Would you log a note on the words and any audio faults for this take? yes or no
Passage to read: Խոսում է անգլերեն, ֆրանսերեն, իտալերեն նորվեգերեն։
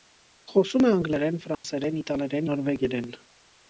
yes